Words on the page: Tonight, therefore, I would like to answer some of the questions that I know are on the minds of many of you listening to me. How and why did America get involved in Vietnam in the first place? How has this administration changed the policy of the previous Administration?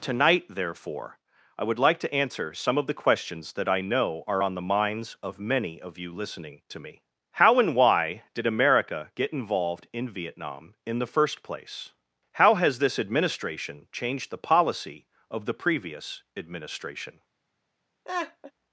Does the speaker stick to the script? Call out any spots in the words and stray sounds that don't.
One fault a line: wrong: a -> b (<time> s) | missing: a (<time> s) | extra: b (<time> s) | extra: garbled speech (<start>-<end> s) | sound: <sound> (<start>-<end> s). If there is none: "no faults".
sound: laugh (18.0-18.5 s)